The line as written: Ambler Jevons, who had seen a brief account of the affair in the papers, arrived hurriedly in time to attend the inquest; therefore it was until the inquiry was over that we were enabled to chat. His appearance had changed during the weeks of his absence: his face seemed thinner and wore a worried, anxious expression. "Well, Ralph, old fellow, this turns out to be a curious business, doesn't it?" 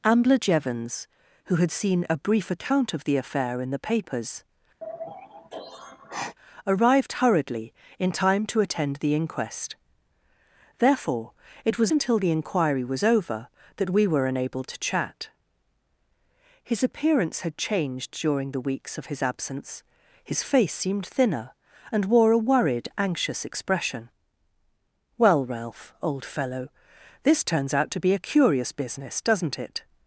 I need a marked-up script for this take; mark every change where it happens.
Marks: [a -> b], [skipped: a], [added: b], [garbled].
Ambler Jevons, who had seen a brief account of the affair in the papers, arrived hurriedly in time to attend the inquest; therefore it was until the inquiry was over that we were enabled to chat. His appearance had changed during the weeks of his absence: his face seemed thinner and wore a worried, anxious expression. "Well, Ralph, old fellow, this turns out to be a curious business, doesn't it?"